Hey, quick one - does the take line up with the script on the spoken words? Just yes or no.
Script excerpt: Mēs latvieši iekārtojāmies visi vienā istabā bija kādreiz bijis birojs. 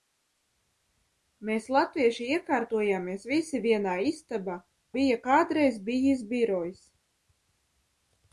yes